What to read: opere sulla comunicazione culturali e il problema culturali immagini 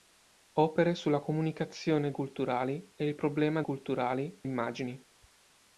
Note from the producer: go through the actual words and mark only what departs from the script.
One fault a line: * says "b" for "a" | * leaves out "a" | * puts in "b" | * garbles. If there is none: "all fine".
all fine